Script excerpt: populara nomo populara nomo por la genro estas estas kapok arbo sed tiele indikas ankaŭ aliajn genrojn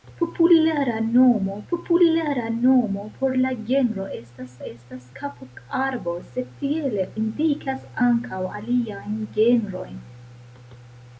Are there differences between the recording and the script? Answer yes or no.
no